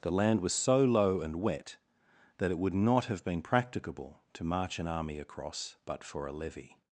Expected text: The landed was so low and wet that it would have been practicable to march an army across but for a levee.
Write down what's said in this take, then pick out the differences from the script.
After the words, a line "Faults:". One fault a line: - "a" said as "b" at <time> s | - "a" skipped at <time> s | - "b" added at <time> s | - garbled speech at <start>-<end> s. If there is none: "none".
The land was so low and wet that it would not have been practicable to march an army across but for a levee.
Faults:
- "landed" said as "land" at 0.1 s
- "not" added at 2.7 s